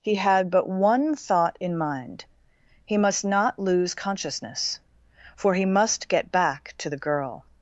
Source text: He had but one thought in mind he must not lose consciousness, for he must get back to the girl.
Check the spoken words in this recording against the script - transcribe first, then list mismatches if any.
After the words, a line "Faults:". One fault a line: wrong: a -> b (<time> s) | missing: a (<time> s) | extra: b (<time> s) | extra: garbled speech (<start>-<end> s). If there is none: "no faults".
He had but one thought in mind he must not lose consciousness, for he must get back to the girl.
Faults:
no faults